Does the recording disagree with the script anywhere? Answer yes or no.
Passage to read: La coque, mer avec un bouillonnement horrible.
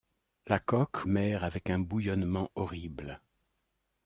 no